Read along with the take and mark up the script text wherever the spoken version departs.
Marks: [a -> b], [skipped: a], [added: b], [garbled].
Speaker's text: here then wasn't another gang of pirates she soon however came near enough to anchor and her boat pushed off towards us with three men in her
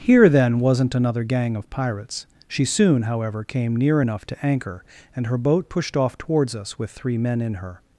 here then wasn't another gang of pirates she soon however came near enough to anchor and her boat pushed off towards us with three men in her